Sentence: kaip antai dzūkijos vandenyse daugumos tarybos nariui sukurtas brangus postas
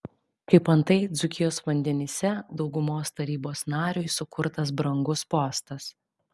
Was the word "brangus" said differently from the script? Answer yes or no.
no